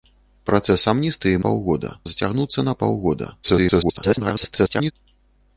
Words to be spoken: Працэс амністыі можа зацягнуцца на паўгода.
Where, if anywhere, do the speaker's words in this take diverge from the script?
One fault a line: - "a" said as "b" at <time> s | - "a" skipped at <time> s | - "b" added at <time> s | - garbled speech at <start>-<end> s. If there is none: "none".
- "можа" said as "паўгода" at 1.5 s
- garbled speech at 3.4-4.9 s